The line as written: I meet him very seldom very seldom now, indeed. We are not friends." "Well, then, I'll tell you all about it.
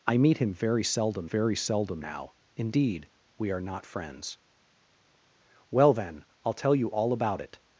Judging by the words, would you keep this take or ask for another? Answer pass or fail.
pass